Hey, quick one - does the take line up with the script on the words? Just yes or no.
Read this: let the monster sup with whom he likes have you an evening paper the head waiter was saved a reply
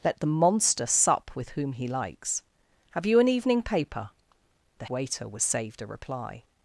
no